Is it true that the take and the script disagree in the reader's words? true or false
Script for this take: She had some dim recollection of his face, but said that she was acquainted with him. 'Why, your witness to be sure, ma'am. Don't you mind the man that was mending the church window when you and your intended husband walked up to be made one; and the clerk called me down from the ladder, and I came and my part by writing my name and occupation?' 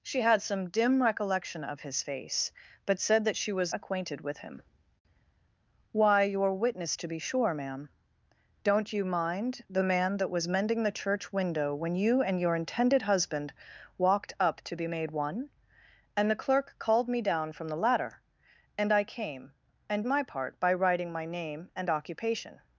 false